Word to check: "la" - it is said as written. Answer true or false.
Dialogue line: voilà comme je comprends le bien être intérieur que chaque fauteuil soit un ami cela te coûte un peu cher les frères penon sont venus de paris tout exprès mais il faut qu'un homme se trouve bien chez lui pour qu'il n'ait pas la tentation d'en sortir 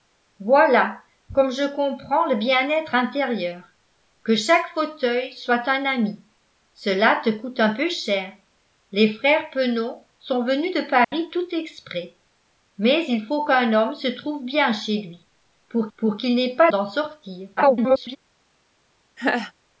false